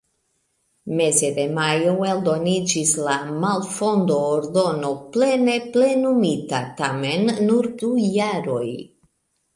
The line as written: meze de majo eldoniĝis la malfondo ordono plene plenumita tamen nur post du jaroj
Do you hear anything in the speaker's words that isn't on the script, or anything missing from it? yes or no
yes